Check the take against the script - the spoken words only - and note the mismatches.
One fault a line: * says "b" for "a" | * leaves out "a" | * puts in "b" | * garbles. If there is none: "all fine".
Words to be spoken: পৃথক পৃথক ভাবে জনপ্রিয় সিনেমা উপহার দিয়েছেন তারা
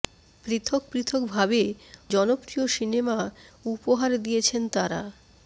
all fine